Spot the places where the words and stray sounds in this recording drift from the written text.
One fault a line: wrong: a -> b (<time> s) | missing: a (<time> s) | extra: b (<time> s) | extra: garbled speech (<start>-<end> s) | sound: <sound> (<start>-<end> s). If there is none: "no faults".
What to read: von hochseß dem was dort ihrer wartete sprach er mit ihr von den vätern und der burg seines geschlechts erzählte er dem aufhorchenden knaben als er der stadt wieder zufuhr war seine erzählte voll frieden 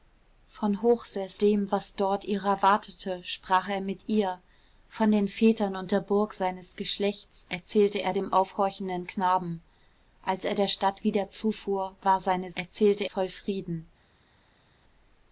no faults